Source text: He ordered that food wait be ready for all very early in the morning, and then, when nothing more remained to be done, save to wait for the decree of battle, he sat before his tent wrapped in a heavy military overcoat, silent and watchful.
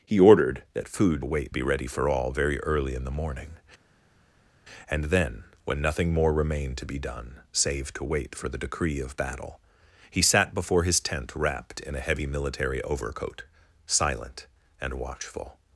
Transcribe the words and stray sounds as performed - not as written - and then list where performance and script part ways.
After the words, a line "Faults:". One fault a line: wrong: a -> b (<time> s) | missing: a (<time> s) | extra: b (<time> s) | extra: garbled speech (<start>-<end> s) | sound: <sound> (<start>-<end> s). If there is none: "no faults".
He ordered that food wait be ready for all very early in the morning, and then, when nothing more remained to be done, save to wait for the decree of battle, he sat before his tent wrapped in a heavy military overcoat, silent and watchful.
Faults:
no faults